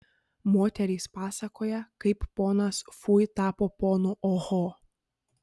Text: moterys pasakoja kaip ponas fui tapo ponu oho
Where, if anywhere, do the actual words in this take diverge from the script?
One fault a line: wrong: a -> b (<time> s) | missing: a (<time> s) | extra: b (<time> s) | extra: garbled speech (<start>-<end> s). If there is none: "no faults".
no faults